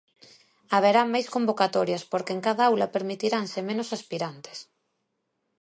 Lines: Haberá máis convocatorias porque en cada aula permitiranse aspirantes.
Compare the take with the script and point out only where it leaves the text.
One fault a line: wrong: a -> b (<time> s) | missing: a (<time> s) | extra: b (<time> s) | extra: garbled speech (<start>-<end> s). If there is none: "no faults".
extra: menos (3.7 s)